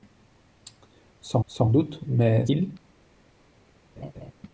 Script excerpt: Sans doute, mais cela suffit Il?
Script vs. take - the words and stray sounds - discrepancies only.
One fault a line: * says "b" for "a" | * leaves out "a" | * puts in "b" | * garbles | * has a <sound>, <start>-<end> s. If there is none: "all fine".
* puts in "sans"
* leaves out "cela suffit"
* has a laugh, 4.0-4.3 s